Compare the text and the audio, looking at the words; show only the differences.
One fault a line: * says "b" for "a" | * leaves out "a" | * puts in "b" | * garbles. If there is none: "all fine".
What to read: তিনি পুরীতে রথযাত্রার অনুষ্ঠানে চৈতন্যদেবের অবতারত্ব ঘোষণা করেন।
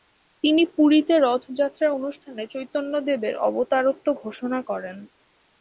all fine